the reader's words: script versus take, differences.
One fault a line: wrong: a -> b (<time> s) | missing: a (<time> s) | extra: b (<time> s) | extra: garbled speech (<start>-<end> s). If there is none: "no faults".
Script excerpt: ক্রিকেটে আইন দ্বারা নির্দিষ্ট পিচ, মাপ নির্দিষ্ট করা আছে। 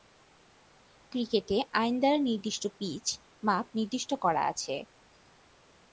no faults